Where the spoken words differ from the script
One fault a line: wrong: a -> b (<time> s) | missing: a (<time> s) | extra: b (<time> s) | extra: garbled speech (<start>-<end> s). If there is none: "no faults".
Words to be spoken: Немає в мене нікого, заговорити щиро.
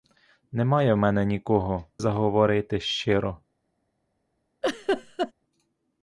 no faults